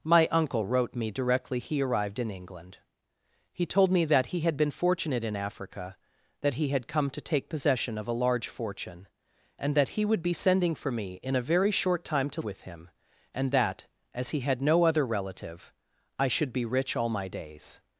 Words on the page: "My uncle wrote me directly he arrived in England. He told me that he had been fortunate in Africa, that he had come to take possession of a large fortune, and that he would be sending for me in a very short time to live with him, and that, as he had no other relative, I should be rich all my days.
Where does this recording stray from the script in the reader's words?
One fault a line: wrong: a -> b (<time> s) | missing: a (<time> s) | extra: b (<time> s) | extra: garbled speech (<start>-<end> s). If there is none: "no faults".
missing: live (12.4 s)